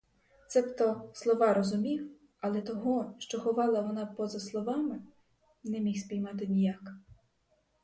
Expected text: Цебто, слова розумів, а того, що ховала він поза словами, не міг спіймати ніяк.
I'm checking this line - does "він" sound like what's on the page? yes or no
no